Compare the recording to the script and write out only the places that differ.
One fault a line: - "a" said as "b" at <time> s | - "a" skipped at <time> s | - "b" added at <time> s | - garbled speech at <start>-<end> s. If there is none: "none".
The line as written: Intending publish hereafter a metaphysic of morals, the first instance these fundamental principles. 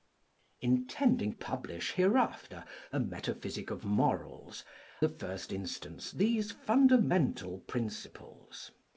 none